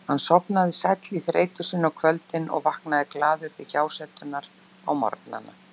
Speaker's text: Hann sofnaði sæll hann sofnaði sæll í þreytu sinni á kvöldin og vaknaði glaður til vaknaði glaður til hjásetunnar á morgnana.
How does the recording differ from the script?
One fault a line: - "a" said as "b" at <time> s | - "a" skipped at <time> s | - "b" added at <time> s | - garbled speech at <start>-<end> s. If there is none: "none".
- "hann sofnaði sæll" skipped at 1.2 s
- "vaknaði glaður til" skipped at 3.7 s